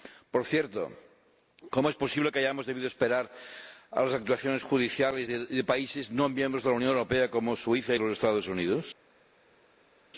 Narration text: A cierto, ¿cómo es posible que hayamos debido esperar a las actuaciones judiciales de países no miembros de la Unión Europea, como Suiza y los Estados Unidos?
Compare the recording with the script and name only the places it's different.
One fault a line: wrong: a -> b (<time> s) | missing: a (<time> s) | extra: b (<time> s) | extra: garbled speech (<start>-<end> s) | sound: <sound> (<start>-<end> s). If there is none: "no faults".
wrong: A -> Por (0.3 s)